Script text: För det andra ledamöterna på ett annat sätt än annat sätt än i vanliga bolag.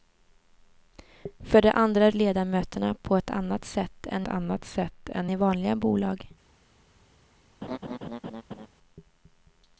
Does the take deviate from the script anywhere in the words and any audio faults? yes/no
yes